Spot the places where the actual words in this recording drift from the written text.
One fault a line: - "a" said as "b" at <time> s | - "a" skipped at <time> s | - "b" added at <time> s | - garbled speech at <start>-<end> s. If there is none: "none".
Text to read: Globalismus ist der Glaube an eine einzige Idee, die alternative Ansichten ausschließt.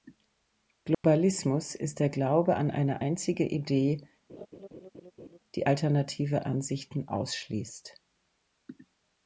none